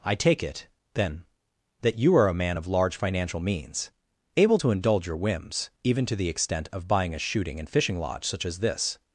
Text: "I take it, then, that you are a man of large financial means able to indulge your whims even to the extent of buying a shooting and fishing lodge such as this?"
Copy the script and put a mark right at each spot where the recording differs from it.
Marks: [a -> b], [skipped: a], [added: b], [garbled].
"I take it, then, that you are a man of large financial means able to indulge your whims even to the extent of buying a shooting and fishing lodge such as this?"